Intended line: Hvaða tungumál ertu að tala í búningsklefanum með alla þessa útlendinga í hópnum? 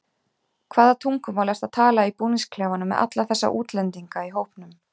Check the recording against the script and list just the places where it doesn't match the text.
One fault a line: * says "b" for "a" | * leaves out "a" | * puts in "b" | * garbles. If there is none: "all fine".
all fine